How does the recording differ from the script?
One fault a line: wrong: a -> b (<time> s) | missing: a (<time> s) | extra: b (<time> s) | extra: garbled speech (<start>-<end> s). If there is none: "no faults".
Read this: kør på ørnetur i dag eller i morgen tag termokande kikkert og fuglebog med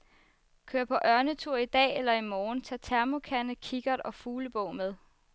no faults